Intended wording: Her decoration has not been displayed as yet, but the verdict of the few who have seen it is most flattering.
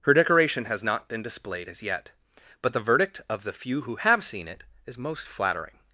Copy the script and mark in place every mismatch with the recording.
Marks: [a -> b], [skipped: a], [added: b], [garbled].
Her decoration has not been displayed as yet, but the verdict of the few who have seen it is most flattering.